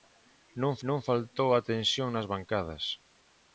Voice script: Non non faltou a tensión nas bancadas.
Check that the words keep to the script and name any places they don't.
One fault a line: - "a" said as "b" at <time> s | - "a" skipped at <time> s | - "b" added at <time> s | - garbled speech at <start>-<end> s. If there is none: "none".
none